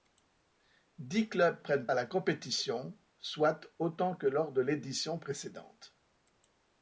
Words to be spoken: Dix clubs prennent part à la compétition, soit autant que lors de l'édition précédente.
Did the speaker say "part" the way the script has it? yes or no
no